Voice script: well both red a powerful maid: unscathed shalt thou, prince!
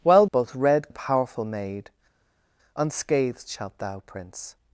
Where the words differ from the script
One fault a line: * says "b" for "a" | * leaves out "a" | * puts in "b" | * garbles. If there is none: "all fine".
all fine